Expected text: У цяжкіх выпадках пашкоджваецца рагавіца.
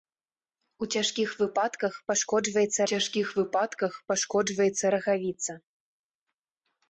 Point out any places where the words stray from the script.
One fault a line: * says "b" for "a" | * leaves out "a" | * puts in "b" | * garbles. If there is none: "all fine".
* puts in "цяжкіх выпадках пашкоджваецца"